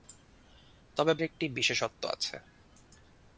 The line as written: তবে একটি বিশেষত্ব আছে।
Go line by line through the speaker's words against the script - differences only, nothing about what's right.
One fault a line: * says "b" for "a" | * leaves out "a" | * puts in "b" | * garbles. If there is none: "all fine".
all fine